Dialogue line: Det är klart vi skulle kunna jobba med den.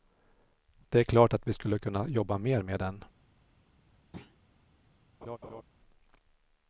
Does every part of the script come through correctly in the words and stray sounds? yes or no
no